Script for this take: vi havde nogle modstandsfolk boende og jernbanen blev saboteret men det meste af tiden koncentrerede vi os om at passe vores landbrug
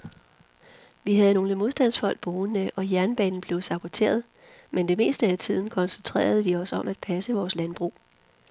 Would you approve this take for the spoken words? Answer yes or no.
yes